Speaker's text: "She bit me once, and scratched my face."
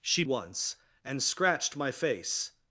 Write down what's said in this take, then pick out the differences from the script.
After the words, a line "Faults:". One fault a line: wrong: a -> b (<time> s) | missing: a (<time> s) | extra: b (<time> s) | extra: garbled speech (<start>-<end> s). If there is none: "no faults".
"She once, and scratched my face."
Faults:
missing: bit me (0.2 s)